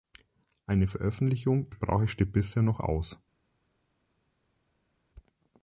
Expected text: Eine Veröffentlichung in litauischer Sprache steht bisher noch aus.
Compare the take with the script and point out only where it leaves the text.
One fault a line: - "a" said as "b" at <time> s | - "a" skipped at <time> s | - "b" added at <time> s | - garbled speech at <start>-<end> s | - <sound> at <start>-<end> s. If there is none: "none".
- "in litauischer" skipped at 1.7 s